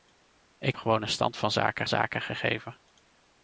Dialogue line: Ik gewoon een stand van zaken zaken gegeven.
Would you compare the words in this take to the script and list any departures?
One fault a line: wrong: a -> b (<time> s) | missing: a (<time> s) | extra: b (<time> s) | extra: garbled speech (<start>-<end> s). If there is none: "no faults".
no faults